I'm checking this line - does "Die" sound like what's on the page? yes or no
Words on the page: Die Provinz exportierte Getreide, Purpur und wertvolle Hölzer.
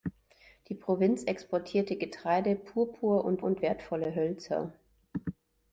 yes